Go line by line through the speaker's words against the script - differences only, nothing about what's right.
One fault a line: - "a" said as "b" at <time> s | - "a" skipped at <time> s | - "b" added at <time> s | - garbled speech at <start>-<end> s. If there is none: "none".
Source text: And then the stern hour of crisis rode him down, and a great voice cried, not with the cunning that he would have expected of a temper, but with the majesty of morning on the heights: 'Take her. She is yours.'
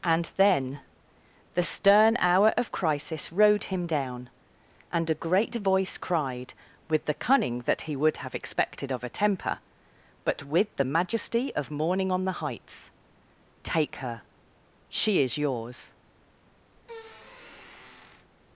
- "not" skipped at 6.5 s